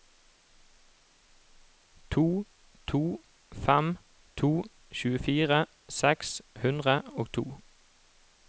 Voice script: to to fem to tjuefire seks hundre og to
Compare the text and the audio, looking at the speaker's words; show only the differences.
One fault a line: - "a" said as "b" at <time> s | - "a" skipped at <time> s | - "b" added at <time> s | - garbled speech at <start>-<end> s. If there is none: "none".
none